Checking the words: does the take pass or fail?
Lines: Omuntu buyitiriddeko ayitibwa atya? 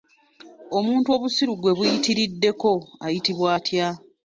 fail